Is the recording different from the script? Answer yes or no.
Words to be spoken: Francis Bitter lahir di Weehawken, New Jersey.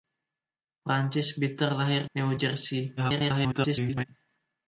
yes